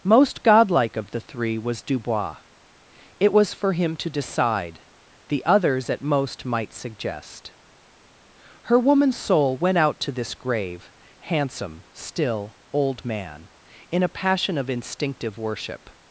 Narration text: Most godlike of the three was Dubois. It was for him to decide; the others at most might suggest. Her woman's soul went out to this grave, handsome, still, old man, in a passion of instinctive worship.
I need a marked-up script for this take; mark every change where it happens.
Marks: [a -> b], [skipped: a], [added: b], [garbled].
Most godlike of the three was Dubois. It was for him to decide; the others at most might suggest. Her woman's soul went out to this grave, handsome, still, old man, in a passion of instinctive worship.